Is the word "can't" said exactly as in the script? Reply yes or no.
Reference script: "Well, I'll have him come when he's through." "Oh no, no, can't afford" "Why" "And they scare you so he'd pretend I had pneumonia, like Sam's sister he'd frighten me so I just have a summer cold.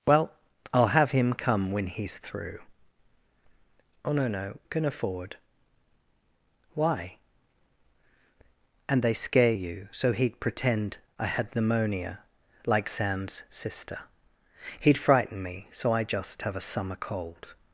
no